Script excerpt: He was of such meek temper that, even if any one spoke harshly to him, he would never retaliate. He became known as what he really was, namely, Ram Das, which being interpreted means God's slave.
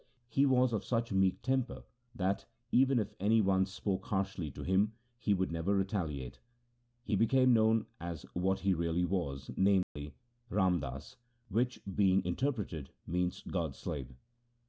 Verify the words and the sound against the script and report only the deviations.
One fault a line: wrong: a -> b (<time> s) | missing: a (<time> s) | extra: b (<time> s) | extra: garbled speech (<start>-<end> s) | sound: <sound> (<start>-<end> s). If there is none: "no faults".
sound: dropout (9.8-10.0 s)